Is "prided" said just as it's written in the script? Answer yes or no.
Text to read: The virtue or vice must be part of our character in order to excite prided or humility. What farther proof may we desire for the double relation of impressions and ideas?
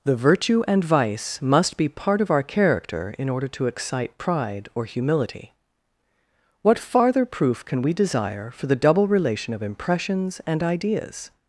no